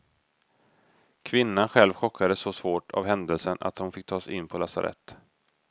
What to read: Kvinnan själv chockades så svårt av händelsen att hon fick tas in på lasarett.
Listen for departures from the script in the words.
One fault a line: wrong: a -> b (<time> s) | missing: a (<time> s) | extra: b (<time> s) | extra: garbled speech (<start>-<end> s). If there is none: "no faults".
no faults